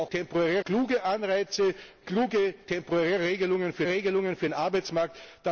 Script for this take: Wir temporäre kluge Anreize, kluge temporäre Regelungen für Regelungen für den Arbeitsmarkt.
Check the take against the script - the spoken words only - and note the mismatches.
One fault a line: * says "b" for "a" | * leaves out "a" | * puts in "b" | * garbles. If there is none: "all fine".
all fine